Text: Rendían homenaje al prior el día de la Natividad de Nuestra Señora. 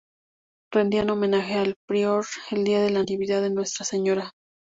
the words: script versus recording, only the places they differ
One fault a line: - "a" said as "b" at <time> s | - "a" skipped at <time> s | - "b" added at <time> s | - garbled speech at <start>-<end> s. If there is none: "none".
none